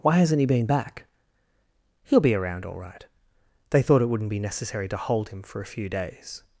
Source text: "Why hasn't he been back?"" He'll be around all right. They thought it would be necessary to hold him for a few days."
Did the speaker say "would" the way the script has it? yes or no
no